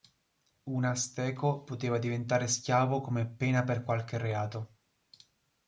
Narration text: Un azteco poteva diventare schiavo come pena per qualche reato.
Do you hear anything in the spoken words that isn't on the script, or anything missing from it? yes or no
no